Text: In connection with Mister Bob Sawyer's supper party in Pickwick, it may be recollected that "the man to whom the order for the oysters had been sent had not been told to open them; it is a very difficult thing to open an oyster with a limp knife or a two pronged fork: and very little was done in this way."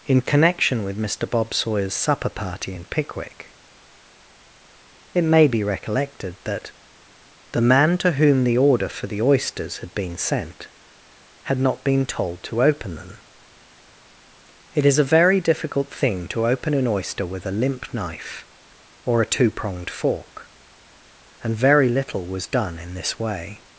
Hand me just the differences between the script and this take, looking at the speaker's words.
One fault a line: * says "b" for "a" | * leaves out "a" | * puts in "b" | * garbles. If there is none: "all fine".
all fine